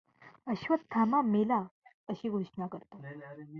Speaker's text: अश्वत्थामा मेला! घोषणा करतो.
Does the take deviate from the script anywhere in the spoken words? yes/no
yes